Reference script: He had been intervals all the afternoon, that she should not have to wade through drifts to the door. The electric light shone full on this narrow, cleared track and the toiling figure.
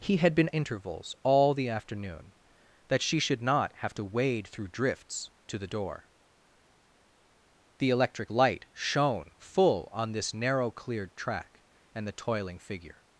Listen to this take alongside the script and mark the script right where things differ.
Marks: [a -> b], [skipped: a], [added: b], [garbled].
He had been intervals all the afternoon, that she should not have to wade through drifts to the door. The electric light shone full on this narrow, cleared track and the toiling figure.